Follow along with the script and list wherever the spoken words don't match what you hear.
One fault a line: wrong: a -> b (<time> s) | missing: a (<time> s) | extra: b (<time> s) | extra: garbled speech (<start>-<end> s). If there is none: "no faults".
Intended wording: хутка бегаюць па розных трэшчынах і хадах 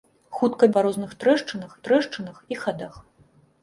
missing: бегаюць (0.7 s)
extra: трэшчынах (1.9 s)